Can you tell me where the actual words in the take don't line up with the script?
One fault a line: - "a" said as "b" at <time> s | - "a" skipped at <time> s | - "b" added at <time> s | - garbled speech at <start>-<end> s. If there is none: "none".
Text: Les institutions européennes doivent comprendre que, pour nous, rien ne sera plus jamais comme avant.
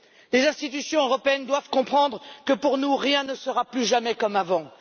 none